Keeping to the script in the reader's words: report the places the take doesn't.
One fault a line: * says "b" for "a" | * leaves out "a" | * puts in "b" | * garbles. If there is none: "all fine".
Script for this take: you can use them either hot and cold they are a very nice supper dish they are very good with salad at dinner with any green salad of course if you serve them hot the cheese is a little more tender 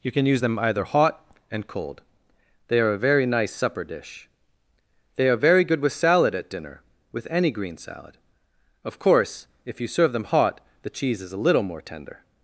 all fine